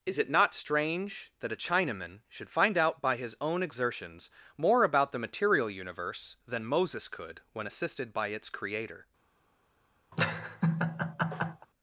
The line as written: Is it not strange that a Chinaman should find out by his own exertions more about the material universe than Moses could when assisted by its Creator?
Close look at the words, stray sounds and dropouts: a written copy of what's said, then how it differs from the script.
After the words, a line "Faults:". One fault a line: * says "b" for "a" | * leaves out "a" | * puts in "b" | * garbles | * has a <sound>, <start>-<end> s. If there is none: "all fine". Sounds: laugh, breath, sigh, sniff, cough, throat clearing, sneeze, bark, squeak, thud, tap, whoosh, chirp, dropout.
Is it not strange that a Chinaman should find out by his own exertions more about the material universe than Moses could when assisted by its Creator?
Faults:
* has a laugh, 10.1-11.7 s